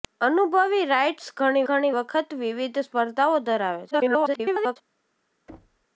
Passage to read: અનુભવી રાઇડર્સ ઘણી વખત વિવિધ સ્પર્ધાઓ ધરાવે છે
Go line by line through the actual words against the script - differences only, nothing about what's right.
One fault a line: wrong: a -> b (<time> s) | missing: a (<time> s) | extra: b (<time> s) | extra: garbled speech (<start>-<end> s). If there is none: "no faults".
extra: ઘણી (1.7 s)
extra: garbled speech (3.9-4.8 s)